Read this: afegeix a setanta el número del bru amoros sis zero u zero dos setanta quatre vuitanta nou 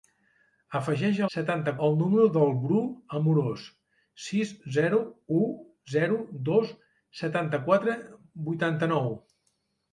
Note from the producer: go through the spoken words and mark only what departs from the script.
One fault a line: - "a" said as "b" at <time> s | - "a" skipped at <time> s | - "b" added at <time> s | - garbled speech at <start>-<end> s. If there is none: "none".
none